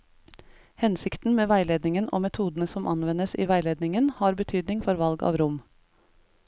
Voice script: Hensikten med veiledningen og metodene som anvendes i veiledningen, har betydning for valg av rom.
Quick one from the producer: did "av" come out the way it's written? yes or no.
yes